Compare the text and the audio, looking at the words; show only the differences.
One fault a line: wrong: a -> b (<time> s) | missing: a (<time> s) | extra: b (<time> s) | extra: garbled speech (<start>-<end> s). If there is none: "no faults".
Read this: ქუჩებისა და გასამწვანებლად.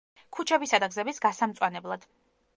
extra: გზების (0.9 s)